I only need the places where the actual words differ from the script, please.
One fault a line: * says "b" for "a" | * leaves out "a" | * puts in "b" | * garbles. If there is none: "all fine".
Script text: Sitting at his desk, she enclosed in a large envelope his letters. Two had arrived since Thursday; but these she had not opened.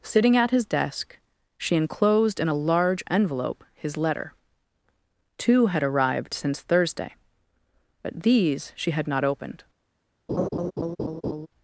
* says "letter" for "letters"